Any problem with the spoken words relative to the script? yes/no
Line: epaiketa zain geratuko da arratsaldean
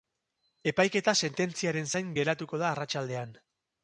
yes